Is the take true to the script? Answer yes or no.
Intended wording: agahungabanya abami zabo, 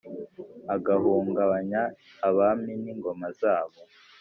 no